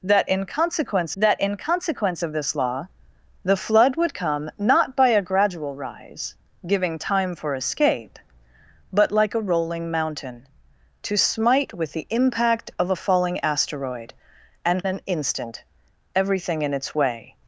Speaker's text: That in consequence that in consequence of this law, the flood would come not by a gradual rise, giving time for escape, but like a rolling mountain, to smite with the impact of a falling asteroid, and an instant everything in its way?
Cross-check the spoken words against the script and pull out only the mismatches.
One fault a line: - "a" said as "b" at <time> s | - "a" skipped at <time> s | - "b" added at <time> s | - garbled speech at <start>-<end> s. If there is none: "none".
none